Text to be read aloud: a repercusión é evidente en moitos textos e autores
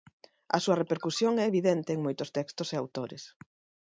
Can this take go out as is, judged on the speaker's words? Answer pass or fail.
fail